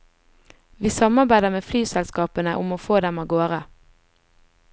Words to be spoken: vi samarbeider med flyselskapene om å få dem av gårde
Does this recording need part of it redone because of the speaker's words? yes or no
no